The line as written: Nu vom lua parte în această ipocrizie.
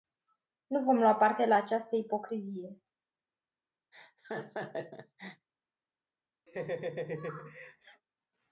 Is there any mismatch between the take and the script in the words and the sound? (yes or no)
yes